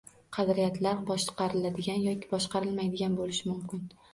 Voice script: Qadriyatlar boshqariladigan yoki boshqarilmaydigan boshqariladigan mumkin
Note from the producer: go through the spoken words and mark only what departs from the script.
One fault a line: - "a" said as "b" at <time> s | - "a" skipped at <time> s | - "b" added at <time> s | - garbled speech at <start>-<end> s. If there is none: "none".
- "boshqariladigan" said as "bo'lishi" at 3.2 s